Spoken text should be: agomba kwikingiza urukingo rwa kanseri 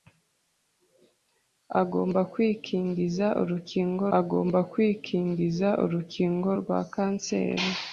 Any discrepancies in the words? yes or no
yes